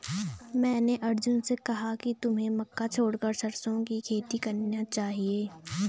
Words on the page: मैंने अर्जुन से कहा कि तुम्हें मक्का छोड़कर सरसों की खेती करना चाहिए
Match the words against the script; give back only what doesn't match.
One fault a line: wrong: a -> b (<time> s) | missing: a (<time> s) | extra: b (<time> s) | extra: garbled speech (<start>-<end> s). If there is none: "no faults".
no faults